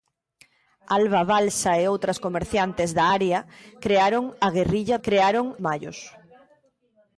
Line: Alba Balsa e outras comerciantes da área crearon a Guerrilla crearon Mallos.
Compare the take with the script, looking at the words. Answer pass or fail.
pass